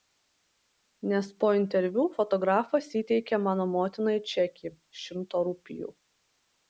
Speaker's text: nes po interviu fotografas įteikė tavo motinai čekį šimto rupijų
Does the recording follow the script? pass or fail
fail